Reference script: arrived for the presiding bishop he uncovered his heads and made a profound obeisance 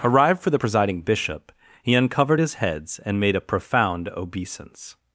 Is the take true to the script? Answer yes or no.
yes